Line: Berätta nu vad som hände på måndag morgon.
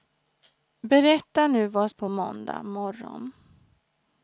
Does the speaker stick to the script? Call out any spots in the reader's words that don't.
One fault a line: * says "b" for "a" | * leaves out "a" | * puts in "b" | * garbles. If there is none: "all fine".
* leaves out "som hände"